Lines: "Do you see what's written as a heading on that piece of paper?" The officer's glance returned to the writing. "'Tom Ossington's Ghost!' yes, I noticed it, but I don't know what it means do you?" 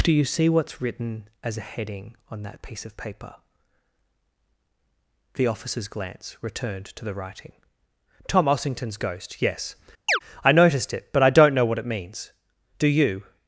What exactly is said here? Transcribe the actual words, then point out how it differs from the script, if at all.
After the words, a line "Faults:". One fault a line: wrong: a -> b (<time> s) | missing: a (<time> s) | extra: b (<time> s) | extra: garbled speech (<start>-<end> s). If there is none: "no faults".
"Do you see what's written as a heading on that piece of paper?" The officer's glance returned to the writing. "'Tom Ossington's Ghost!' yes, I noticed it, but I don't know what it means do you?"
Faults:
no faults